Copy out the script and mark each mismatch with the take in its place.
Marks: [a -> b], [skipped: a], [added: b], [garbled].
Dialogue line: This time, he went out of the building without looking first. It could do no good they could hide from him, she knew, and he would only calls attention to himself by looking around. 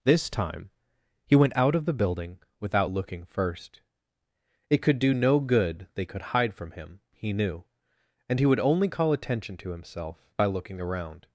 This time, he went out of the building without looking first. It could do no good they could hide from him, [she -> he] knew, and he would only [calls -> call] attention to himself by looking around.